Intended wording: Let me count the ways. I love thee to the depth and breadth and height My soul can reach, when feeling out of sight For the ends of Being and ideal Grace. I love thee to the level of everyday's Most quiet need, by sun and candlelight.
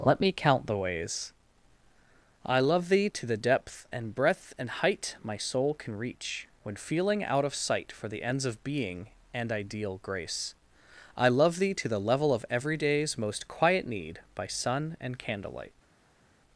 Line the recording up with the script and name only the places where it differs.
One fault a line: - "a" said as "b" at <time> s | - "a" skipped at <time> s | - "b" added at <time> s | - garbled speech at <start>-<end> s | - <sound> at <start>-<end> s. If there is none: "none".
none